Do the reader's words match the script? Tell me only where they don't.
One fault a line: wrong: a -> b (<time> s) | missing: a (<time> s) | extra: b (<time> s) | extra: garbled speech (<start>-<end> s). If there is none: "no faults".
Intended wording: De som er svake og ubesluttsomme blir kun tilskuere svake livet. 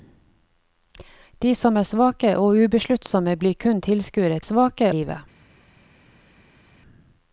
no faults